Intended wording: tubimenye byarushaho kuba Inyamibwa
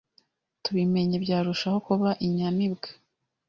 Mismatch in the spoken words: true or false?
false